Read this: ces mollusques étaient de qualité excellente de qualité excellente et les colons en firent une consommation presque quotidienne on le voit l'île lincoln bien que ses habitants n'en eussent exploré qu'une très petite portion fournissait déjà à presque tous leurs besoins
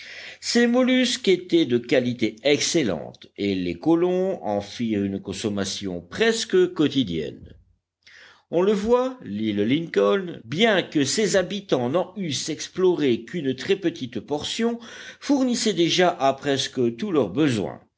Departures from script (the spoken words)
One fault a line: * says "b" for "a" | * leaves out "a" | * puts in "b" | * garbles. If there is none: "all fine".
* leaves out "de qualité excellente"